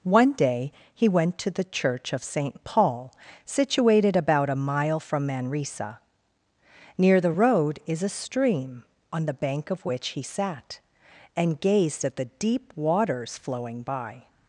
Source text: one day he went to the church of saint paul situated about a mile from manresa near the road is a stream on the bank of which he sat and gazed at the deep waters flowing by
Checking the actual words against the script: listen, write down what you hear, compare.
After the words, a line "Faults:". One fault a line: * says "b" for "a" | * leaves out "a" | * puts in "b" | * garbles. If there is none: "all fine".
one day he went to the church of saint paul situated about a mile from manresa near the road is a stream on the bank of which he sat and gazed at the deep waters flowing by
Faults:
all fine